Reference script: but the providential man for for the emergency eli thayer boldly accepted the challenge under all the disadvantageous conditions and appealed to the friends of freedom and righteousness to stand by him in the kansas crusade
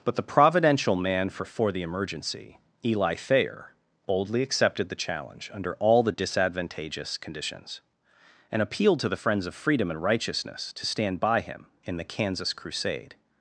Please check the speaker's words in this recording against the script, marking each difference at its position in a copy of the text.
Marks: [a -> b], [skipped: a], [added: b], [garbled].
but the providential man for for the emergency eli thayer boldly accepted the challenge under all the disadvantageous conditions and appealed to the friends of freedom and righteousness to stand by him in the kansas crusade